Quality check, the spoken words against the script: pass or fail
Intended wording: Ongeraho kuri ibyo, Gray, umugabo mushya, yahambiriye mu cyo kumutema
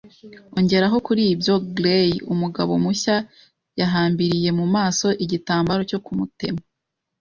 fail